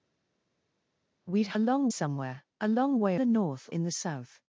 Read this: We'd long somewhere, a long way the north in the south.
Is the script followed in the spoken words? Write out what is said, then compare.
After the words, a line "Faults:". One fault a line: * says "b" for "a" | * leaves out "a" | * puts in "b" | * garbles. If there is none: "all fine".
We'd long somewhere, a long way the north in the south.
Faults:
all fine